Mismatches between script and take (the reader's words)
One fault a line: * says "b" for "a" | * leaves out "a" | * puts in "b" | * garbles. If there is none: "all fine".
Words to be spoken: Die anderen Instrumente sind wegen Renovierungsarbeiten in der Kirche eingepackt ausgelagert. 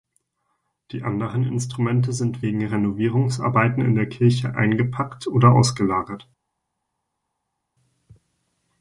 * puts in "oder"